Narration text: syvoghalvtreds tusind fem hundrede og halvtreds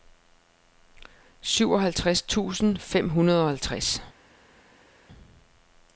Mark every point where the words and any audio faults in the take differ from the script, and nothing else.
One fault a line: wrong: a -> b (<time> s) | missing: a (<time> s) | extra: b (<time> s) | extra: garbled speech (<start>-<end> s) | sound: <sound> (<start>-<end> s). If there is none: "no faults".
no faults